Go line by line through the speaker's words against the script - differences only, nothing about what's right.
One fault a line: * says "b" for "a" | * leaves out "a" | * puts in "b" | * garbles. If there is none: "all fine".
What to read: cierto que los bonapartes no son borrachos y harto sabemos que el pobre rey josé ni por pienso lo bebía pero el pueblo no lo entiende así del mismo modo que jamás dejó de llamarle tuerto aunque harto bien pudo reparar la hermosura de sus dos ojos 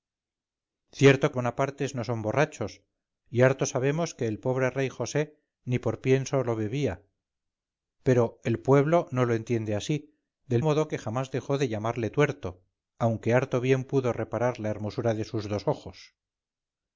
* leaves out "los"
* leaves out "mismo"